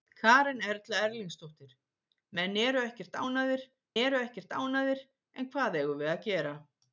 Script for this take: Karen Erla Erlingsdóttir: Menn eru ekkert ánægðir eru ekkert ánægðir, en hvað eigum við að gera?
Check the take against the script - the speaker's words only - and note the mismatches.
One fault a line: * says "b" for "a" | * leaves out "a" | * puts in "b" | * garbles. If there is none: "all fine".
all fine